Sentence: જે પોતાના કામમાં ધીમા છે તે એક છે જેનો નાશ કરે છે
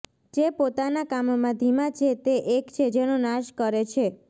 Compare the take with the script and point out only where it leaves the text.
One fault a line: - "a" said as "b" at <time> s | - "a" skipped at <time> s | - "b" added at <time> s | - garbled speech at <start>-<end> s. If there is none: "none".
none